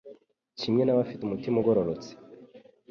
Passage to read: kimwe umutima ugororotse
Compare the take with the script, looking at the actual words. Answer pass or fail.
fail